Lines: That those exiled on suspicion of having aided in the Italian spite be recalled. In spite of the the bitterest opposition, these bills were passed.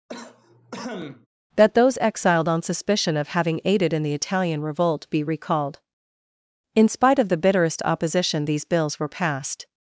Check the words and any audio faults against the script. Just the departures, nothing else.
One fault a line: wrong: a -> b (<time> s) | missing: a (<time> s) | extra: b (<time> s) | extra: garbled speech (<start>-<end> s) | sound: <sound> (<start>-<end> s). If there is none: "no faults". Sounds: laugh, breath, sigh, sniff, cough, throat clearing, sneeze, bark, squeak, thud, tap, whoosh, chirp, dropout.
sound: cough (0.1-1.3 s)
wrong: spite -> revolt (4.6 s)
missing: the (7.4 s)